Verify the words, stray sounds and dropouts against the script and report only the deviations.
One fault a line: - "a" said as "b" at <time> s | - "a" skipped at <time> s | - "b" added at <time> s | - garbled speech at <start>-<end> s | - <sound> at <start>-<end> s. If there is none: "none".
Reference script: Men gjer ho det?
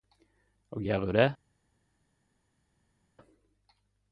- "Men" said as "Og" at 0.7 s